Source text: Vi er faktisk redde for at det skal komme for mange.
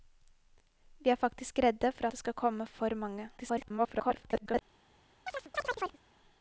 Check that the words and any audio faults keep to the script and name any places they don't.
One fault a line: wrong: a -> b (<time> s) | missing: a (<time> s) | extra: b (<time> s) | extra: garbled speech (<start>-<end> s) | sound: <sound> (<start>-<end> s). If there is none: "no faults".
missing: at (2.1 s)
extra: garbled speech (3.4-4.6 s)
sound: chirp (5.3-6.0 s)